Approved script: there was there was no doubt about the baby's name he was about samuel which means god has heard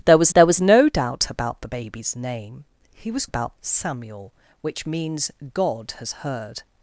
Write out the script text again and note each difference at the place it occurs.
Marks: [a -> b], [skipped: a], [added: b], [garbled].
there was there was no doubt about the baby's name he was about samuel which means god has heard